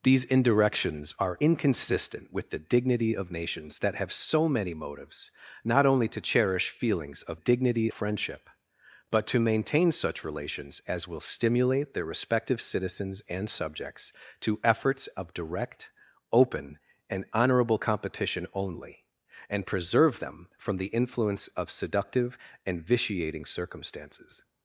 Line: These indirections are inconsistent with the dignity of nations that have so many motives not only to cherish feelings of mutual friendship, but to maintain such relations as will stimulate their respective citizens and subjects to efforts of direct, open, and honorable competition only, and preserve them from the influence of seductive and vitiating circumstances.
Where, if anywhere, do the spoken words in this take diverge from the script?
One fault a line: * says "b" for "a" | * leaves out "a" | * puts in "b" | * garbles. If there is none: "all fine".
* says "dignity" for "mutual"